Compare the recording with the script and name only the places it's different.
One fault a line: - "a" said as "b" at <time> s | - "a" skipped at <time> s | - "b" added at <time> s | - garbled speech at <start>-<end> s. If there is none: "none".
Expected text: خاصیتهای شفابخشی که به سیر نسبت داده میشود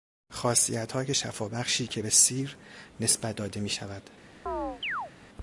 none